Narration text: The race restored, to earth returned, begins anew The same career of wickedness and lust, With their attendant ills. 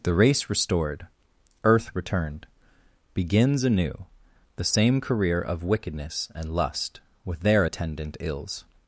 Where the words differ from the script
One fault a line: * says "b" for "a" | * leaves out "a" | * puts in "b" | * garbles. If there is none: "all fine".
* leaves out "to"